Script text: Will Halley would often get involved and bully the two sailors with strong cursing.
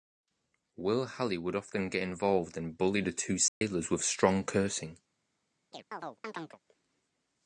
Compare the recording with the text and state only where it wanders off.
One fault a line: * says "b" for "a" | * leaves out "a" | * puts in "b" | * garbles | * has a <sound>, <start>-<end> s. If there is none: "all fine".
* has a dropout, 3.5-3.6 s
* has a chirp, 5.7-6.6 s